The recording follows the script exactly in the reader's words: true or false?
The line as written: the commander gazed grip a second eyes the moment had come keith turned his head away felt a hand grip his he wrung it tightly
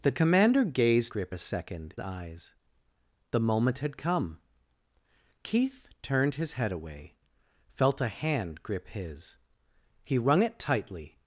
true